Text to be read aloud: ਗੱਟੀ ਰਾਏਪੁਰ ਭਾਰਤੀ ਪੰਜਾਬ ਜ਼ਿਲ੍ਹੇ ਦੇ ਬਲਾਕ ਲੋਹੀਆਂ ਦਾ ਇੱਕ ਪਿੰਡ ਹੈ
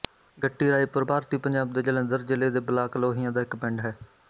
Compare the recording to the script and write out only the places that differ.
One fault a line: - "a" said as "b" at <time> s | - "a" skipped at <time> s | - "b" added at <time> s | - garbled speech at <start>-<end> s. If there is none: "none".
- "ਦੇ ਜਲੰਧਰ" added at 1.7 s